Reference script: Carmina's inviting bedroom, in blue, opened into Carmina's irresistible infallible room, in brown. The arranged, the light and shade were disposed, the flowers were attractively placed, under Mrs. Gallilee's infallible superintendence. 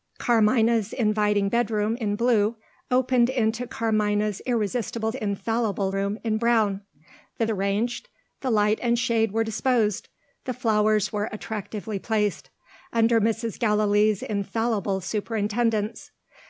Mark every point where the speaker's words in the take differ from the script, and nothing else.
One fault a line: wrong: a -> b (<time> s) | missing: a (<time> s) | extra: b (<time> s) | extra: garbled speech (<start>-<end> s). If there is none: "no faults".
no faults